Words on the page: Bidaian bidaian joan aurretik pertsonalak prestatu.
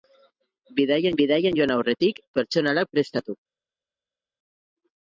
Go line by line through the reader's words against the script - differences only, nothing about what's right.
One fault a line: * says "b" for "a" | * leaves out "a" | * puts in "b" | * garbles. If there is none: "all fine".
all fine